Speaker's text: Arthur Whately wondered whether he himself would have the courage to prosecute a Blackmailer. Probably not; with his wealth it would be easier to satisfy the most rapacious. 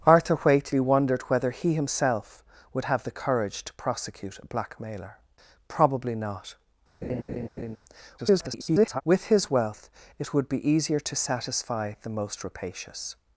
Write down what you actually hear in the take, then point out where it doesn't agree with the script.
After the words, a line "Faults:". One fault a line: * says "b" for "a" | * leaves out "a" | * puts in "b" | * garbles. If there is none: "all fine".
Arthur Whately wondered whether he himself would have the courage to prosecute a Blackmailer. Probably not; [garbled] with his wealth it would be easier to satisfy the most rapacious.
Faults:
* garbles